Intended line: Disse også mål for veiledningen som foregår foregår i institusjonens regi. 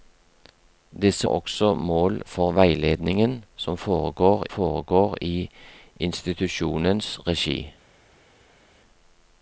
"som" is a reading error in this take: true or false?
false